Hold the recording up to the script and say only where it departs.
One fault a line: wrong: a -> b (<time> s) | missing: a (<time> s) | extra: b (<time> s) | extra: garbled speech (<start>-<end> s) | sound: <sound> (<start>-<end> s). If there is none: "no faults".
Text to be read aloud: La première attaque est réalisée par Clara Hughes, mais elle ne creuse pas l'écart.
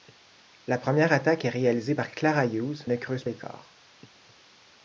missing: mais elle (2.9 s)
missing: pas (3.2 s)